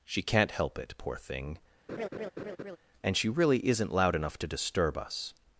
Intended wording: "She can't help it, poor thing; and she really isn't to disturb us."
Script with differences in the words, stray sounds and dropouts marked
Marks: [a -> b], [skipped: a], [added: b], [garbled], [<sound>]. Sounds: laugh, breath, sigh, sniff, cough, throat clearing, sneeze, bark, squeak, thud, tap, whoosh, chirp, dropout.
"She can't help it, poor thing; [laugh] and she really isn't [added: loud enough] to disturb us."